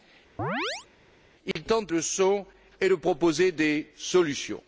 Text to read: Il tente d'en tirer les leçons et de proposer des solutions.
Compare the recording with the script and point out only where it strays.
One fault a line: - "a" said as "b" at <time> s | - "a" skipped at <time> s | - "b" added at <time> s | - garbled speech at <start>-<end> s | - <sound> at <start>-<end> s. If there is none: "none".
- chirp at 0.4-0.9 s
- dropout at 1.5-1.6 s
- "d'en tirer les" skipped at 1.9 s